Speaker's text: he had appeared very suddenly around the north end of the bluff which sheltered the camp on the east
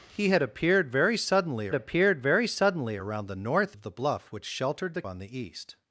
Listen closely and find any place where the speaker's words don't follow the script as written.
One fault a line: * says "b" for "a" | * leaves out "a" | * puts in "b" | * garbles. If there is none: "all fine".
* puts in "appeared very suddenly"
* leaves out "end"
* leaves out "camp"